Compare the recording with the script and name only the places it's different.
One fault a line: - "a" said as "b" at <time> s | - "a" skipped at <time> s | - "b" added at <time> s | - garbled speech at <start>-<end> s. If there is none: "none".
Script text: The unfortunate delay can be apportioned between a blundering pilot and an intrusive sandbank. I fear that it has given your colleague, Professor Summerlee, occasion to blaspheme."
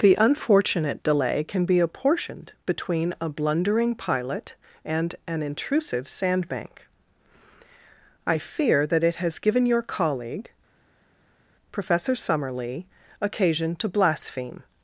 none